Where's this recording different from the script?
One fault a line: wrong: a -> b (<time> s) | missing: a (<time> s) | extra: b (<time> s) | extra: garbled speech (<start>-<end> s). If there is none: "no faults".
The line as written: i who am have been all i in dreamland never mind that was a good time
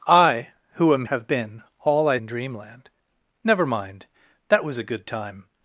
no faults